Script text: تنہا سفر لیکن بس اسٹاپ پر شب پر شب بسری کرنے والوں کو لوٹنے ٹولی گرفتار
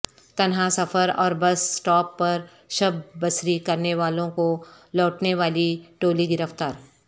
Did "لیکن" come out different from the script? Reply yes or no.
yes